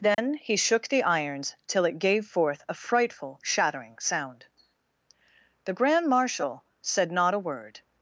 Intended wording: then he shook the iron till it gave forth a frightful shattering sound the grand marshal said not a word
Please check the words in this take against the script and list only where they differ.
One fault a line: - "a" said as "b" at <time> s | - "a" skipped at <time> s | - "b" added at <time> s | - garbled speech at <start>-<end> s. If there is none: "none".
- "iron" said as "irons" at 1.0 s